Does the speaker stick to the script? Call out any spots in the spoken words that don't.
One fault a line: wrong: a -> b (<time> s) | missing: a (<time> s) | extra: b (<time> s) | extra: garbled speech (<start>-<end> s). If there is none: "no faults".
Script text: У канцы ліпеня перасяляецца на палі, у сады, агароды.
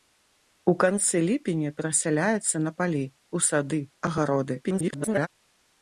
extra: garbled speech (4.6-5.3 s)